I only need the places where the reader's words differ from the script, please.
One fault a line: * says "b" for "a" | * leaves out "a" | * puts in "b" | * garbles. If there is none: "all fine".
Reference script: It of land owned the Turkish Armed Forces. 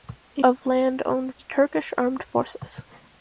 all fine